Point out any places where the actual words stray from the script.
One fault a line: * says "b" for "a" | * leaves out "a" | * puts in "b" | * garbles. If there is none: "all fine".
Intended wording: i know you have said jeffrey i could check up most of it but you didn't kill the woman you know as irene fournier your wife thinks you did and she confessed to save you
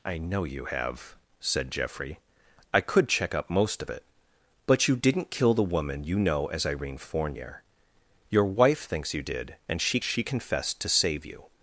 * puts in "she"